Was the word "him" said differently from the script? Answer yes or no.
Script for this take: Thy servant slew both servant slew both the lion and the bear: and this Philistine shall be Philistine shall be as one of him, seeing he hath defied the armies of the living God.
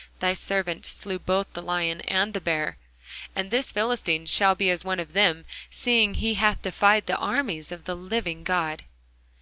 yes